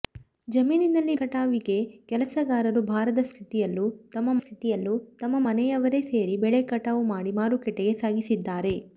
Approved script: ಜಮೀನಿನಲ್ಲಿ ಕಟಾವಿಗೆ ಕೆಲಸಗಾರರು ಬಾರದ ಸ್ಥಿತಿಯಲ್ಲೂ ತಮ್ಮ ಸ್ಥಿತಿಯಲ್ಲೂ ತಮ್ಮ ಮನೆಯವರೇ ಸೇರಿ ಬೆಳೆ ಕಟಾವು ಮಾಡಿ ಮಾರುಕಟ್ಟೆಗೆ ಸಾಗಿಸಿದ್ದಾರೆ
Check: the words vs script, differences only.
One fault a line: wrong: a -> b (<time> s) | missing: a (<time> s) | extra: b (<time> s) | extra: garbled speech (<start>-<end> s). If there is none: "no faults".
no faults